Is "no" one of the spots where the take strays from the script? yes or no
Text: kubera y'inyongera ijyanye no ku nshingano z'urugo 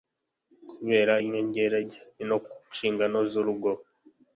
no